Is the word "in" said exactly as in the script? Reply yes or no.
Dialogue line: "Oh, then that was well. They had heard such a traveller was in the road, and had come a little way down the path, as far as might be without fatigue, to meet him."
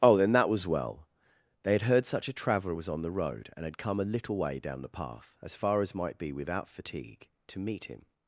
no